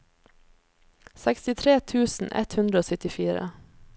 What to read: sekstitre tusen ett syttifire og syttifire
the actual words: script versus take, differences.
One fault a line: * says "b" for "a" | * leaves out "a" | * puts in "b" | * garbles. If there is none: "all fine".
* says "hundre" for "syttifire"